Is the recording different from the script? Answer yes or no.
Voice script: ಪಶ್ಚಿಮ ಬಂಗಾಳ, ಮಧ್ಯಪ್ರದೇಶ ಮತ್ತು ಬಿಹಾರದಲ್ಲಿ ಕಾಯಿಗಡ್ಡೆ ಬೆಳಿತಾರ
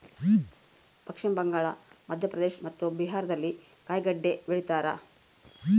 no